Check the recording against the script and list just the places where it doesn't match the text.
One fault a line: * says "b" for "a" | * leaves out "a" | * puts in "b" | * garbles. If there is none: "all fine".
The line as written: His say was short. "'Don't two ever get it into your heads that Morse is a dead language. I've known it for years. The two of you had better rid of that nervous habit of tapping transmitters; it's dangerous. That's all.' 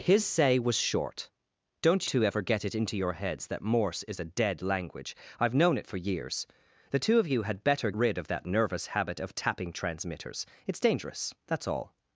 all fine